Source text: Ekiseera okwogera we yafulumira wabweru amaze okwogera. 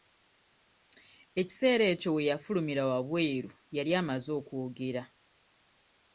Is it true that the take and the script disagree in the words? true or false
true